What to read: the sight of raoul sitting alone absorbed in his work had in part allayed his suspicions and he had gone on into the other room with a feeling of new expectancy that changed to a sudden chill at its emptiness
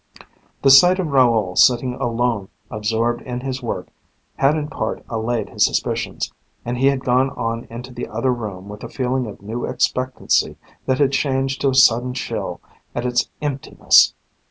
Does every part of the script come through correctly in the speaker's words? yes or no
no